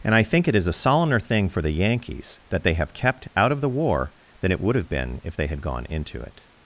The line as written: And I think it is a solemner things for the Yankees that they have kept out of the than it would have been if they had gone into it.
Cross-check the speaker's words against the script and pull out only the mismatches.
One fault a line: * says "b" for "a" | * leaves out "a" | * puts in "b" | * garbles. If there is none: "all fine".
* says "thing" for "things"
* puts in "war"